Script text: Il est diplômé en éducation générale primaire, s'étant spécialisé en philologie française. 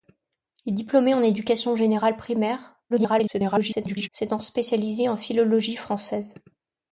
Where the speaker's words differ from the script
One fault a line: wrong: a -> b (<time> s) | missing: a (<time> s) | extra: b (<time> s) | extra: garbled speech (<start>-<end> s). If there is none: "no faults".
extra: garbled speech (2.9-4.1 s)